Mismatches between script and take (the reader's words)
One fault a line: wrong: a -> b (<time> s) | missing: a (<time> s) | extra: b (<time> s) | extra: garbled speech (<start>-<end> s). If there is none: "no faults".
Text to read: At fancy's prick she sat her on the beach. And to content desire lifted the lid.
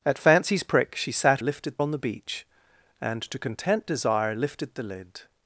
wrong: her -> lifted (1.4 s)